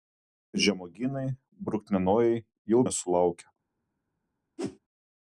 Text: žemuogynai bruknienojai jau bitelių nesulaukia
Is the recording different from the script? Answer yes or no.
yes